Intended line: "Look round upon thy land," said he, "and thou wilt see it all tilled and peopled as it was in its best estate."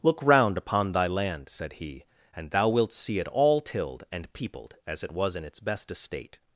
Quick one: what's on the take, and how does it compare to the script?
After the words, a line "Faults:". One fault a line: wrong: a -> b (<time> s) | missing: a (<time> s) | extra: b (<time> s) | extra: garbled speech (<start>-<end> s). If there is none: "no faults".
"Look round upon thy land," said he, "and thou wilt see it all tilled and peopled as it was in its best estate."
Faults:
no faults